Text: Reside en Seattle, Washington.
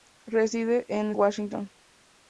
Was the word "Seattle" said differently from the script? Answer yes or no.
yes